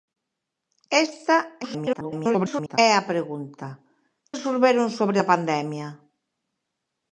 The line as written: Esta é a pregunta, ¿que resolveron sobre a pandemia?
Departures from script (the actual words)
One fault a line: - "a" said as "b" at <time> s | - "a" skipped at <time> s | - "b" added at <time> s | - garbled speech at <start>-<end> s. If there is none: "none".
- garbled speech at 1.6-2.8 s
- "que" skipped at 3.7 s